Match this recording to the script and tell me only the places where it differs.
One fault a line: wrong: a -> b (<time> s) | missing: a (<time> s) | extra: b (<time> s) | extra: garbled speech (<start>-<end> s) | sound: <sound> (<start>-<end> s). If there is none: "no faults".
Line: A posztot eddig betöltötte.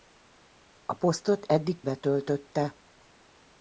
no faults